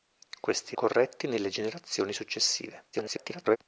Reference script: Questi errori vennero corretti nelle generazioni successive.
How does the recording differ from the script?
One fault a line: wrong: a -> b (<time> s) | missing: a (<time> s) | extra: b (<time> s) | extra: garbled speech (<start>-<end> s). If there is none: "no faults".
missing: errori vennero (0.8 s)
extra: garbled speech (2.9-3.6 s)